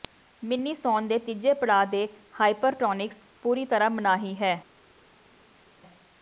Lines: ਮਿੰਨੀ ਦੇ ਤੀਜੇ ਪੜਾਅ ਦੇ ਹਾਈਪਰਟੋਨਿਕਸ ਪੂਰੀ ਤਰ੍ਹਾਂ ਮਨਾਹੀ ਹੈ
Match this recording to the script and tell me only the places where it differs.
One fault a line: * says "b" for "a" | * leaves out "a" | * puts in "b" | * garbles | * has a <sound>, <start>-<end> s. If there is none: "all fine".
* puts in "ਸੌਣ"